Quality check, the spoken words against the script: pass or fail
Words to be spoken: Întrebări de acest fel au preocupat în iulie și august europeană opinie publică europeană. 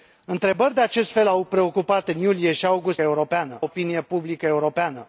pass